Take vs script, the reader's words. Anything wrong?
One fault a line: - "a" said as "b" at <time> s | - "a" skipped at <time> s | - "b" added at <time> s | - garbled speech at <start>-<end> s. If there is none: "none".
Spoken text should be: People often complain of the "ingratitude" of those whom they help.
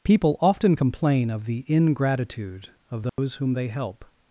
none